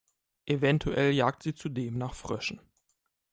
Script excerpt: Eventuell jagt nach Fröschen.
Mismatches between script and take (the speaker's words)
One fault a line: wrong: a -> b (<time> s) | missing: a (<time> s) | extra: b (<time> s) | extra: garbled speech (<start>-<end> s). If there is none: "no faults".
extra: sie zudem (1.4 s)